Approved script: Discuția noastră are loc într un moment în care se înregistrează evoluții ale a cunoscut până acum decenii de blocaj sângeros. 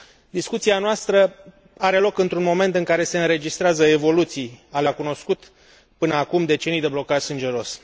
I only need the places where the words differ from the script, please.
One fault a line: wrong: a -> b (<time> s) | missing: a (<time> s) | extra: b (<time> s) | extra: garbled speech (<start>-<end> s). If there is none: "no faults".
no faults